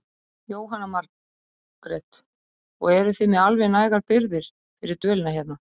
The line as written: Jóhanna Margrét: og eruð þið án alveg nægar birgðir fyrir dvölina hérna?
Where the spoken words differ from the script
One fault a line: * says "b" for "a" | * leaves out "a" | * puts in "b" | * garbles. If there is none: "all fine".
* says "með" for "án"